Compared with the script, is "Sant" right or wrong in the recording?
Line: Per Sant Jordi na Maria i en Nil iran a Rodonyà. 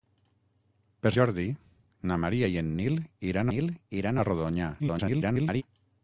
wrong